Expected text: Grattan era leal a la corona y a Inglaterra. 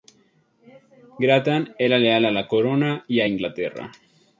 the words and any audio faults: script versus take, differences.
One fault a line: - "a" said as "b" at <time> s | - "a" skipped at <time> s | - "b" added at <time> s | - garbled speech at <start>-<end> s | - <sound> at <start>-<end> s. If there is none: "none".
none